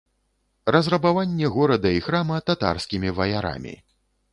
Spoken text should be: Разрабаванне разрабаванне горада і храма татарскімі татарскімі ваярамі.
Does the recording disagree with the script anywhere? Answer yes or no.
yes